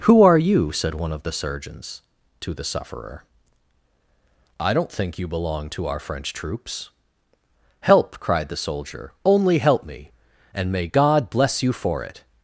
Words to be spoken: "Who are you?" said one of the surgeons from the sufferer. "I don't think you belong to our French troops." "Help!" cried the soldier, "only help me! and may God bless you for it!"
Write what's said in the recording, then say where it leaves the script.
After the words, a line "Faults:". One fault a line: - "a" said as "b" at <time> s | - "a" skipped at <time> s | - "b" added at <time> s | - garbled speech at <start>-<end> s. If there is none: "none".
"Who are you?" said one of the surgeons to the sufferer. "I don't think you belong to our French troops." "Help!" cried the soldier, "only help me! and may God bless you for it!"
Faults:
- "from" said as "to" at 2.4 s